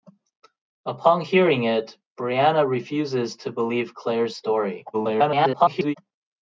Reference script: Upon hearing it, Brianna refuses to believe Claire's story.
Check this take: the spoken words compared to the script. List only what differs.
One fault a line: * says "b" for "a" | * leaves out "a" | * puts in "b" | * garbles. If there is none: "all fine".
* garbles